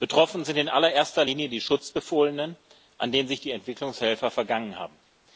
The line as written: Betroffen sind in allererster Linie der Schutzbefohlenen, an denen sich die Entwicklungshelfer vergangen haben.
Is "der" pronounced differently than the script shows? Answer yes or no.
yes